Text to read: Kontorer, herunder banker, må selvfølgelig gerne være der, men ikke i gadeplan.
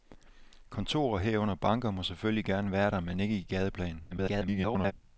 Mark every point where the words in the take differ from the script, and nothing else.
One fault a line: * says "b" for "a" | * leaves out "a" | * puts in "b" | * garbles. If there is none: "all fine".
* garbles